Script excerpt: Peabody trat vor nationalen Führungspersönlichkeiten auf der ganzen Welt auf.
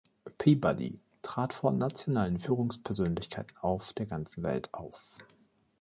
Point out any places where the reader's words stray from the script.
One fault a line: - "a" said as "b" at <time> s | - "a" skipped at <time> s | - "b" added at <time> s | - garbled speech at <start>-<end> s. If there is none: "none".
none